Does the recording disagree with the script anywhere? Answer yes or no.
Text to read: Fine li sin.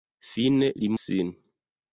no